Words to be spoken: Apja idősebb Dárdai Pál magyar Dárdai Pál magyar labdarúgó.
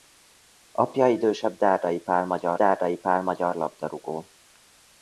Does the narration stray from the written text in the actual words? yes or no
no